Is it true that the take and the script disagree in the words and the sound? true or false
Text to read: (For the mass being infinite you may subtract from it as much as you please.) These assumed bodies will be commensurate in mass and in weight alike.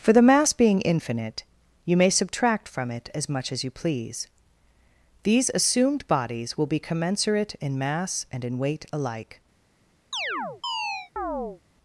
true